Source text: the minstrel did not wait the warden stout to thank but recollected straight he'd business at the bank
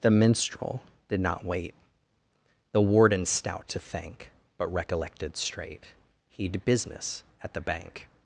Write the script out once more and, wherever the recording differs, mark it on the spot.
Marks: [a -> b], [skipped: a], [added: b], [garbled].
the minstrel did not wait the warden stout to thank but recollected straight he'd business at the bank